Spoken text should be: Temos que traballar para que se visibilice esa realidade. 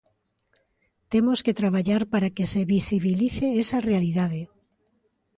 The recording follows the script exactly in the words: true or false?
true